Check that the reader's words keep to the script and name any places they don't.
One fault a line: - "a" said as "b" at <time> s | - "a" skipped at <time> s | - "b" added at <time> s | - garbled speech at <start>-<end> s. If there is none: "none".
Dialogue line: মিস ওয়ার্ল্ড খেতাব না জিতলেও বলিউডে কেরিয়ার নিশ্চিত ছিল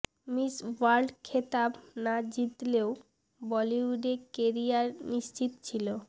none